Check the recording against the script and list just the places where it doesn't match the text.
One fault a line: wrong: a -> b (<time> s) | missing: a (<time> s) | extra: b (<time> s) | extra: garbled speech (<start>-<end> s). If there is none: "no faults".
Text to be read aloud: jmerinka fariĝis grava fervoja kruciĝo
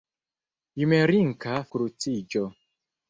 missing: fariĝis grava fervoja (1.6 s)